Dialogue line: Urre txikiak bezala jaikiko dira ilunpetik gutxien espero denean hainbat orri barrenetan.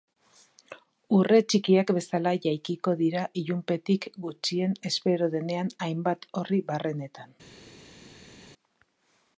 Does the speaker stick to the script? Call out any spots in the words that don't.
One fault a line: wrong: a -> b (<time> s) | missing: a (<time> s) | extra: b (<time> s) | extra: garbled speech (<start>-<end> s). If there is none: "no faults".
no faults